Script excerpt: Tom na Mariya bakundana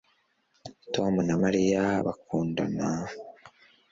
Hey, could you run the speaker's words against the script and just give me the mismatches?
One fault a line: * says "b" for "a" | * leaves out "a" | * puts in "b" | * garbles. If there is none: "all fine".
all fine